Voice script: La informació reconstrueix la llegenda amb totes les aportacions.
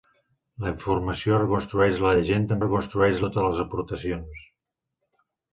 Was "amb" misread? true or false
true